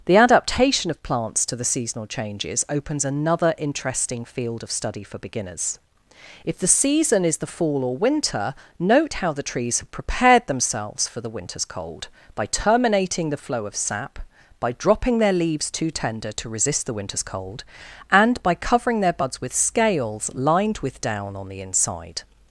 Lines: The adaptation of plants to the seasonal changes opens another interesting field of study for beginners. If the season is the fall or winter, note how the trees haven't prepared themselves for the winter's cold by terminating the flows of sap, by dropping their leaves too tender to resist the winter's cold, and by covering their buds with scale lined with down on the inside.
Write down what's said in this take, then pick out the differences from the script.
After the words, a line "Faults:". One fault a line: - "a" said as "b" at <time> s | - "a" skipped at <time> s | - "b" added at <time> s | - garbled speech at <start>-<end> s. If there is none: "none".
The adaptation of plants to the seasonal changes opens another interesting field of study for beginners. If the season is the fall or winter, note how the trees have prepared themselves for the winter's cold by terminating the flow of sap, by dropping their leaves too tender to resist the winter's cold, and by covering their buds with scales lined with down on the inside.
Faults:
- "haven't" said as "have" at 9.8 s
- "flows" said as "flow" at 13.4 s
- "scale" said as "scales" at 19.5 s